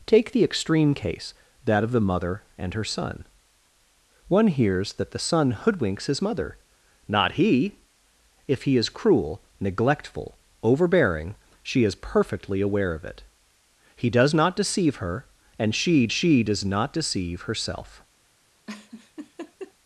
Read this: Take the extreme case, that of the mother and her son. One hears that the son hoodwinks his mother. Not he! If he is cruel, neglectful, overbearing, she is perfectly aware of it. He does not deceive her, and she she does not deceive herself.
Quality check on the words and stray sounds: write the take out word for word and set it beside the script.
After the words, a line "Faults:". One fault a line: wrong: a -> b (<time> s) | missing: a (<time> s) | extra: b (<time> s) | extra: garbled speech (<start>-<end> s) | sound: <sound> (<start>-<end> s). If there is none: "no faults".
Take the extreme case, that of the mother and her son. One hears that the son hoodwinks his mother. Not he! If he is cruel, neglectful, overbearing, she is perfectly aware of it. He does not deceive her, and she she does not deceive herself.
Faults:
sound: laugh (18.7-19.7 s)